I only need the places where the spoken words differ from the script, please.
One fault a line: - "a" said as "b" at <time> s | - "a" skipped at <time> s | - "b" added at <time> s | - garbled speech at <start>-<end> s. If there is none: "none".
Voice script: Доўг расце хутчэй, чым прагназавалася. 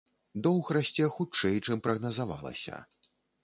none